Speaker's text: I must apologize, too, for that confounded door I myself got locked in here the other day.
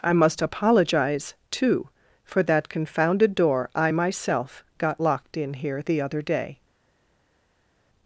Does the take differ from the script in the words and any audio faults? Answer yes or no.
no